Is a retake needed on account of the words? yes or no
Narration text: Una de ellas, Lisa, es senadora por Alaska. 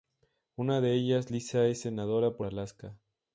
no